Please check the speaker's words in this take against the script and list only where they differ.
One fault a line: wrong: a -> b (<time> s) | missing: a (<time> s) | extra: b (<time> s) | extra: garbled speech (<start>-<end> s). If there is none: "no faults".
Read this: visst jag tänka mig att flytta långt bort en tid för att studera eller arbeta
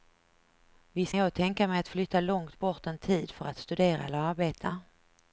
no faults